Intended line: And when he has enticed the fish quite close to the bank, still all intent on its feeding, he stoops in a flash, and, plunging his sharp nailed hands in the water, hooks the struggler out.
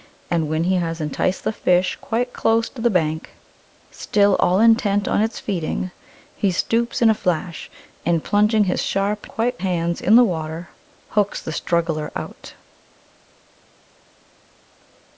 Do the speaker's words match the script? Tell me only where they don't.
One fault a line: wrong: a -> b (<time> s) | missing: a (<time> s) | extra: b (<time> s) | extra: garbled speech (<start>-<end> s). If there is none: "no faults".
wrong: nailed -> quite (9.3 s)